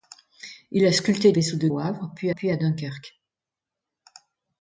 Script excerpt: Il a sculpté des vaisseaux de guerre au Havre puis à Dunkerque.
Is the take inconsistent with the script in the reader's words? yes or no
yes